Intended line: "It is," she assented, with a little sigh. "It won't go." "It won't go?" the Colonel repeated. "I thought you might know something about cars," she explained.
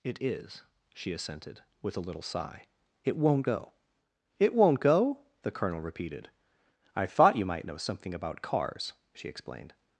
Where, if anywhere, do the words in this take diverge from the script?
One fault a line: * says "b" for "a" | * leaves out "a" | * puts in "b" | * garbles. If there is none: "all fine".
all fine